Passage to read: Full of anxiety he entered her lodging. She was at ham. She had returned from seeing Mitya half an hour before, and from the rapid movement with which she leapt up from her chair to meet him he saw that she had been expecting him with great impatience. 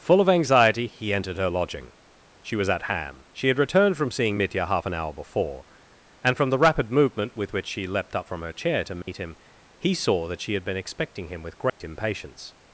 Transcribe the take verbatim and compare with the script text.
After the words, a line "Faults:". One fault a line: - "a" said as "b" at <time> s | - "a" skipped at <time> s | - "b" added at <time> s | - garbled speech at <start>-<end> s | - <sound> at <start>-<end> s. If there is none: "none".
Full of anxiety he entered her lodging. She was at ham. She had returned from seeing Mitya half an hour before, and from the rapid movement with which she leapt up from her chair to meet him he saw that she had been expecting him with great impatience.
Faults:
- dropout at 9.0-9.1 s
- dropout at 11.7-11.8 s